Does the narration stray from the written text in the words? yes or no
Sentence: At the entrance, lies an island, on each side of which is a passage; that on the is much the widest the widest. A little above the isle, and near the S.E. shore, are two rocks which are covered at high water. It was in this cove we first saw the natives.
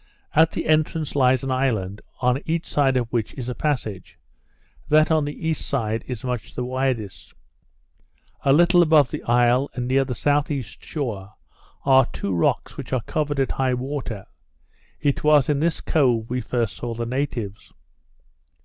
yes